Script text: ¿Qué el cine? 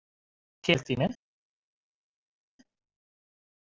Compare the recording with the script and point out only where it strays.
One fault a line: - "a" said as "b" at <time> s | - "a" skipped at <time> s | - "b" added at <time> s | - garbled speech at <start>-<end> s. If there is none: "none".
none